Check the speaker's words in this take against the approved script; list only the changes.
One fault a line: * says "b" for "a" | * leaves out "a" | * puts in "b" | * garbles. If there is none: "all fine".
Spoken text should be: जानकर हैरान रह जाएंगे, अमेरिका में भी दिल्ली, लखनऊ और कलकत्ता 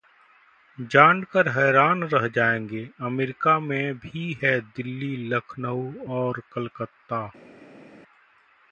* puts in "है"